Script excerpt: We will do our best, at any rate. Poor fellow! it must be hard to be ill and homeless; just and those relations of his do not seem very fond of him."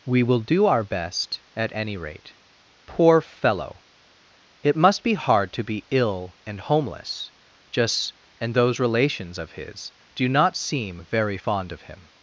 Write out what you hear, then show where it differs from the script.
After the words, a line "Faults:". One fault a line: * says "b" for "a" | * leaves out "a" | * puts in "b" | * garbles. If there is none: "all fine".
We will do our best, at any rate. Poor fellow! it must be hard to be ill and homeless; just and those relations of his do not seem very fond of him."
Faults:
all fine